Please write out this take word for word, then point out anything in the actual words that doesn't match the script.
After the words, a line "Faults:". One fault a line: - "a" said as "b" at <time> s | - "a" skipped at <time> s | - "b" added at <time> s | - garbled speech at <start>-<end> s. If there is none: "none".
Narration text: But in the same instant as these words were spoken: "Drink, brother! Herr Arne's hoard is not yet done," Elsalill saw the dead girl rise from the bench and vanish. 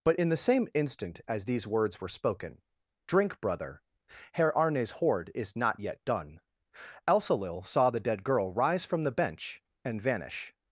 But in the same instant as these words were spoken: "Drink, brother! Herr Arne's hoard is not yet done," Elsalill saw the dead girl rise from the bench and vanish.
Faults:
none